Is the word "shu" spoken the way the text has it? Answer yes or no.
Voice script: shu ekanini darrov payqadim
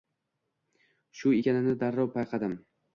yes